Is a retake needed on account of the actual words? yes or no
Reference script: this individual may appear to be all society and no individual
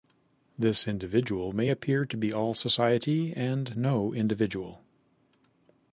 no